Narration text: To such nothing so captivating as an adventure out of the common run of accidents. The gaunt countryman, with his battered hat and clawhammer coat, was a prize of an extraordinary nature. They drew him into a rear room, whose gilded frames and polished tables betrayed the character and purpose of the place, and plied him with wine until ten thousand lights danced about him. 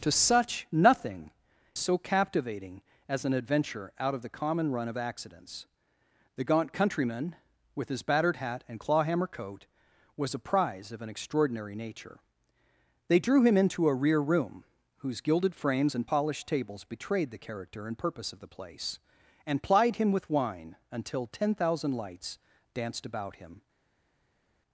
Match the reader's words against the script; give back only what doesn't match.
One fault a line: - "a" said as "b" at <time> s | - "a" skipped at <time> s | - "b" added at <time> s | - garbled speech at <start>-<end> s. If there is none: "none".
none